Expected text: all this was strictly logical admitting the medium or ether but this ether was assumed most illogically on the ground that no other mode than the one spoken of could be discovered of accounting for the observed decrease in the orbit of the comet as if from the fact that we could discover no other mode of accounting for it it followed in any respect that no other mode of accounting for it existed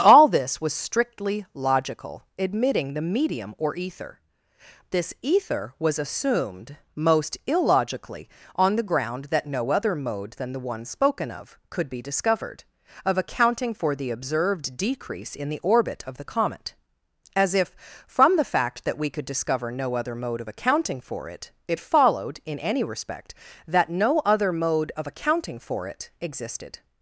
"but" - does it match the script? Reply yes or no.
no